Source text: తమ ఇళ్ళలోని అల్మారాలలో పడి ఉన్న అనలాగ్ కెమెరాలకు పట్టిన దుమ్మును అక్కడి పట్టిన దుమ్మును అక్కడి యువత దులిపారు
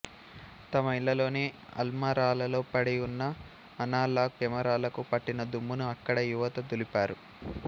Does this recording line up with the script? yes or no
no